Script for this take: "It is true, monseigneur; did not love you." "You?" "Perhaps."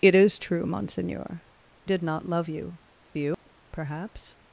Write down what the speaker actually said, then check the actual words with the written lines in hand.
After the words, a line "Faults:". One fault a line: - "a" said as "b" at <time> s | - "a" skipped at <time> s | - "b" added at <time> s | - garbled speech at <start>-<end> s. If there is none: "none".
"It is true, monseigneur; did not love you." "You?" "Perhaps."
Faults:
none